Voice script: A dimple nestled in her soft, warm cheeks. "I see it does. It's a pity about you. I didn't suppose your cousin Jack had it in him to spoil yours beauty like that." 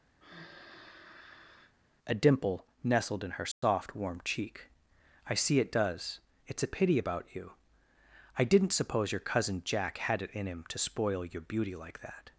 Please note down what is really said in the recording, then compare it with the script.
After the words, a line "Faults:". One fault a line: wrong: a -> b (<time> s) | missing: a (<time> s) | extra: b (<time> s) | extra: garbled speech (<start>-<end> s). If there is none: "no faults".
A dimple nestled in her soft, warm cheek. "I see it does. It's a pity about you. I didn't suppose your cousin Jack had it in him to spoil your beauty like that."
Faults:
wrong: cheeks -> cheek (4.2 s)
wrong: yours -> your (11.3 s)